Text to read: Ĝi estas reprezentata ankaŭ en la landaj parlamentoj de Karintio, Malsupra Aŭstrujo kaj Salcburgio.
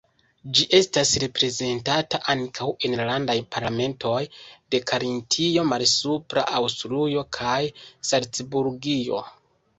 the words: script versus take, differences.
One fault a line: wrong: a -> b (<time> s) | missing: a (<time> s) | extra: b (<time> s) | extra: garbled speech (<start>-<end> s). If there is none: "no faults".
no faults